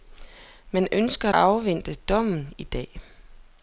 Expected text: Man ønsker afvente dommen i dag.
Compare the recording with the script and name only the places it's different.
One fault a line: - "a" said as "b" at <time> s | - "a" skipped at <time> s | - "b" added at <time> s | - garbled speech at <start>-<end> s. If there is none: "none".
none